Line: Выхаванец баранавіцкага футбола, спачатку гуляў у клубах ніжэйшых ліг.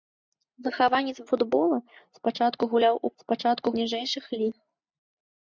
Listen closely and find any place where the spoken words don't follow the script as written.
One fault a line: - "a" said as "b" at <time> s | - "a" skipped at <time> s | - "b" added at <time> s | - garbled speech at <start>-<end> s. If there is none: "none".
- "баранавіцкага" skipped at 1.2 s
- "клубах" said as "спачатку" at 3.2 s